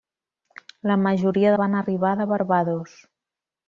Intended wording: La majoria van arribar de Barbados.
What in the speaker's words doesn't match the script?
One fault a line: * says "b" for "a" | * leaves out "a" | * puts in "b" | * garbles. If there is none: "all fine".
all fine